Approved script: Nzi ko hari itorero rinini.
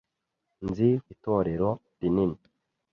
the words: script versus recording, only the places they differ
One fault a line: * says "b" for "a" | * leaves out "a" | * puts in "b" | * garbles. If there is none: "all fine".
* leaves out "ko hari"